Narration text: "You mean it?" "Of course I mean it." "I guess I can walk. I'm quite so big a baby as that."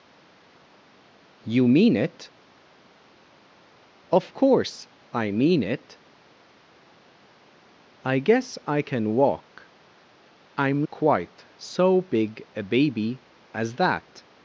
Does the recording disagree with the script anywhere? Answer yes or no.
no